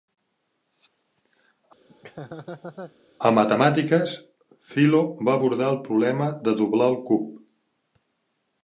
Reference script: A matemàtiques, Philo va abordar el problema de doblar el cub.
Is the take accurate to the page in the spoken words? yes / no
yes